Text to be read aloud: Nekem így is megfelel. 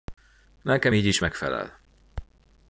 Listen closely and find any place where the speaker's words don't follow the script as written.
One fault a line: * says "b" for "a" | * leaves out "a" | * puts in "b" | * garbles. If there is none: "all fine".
all fine